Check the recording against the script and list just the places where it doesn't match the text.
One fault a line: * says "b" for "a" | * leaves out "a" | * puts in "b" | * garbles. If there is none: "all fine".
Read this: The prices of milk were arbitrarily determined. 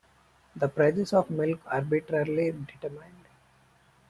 * leaves out "were"